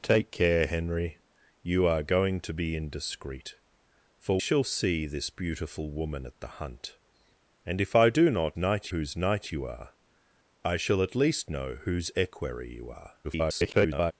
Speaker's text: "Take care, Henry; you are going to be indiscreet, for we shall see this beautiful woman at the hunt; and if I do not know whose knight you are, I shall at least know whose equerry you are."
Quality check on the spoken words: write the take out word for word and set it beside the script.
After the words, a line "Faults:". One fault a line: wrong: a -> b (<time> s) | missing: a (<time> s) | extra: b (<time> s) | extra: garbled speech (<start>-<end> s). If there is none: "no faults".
"Take care, Henry; you are going to be indiscreet, for shall see this beautiful woman at the hunt; and if I do not knight whose knight you are, I shall at least know whose equerry you are." [garbled]
Faults:
missing: we (4.4 s)
wrong: know -> knight (8.6 s)
extra: garbled speech (13.2-14.1 s)